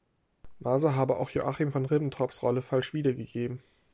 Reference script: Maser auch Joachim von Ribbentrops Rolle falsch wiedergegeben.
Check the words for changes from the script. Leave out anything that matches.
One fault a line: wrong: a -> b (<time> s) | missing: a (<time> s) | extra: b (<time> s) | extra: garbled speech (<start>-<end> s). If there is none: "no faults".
extra: habe (0.9 s)